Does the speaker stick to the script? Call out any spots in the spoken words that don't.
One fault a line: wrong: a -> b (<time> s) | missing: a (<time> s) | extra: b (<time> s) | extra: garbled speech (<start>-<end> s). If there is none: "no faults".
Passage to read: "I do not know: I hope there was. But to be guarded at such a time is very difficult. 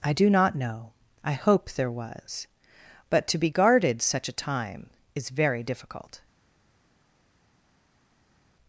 missing: at (4.0 s)